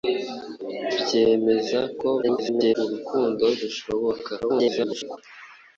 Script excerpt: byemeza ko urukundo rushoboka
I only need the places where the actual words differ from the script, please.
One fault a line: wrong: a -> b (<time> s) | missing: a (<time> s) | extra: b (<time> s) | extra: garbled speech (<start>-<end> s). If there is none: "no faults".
extra: garbled speech (2.2-2.8 s)
extra: garbled speech (4.4-5.2 s)